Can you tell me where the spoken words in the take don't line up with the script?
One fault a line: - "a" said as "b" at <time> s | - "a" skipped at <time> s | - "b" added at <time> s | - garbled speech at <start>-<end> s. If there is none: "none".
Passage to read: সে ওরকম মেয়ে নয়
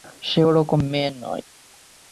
none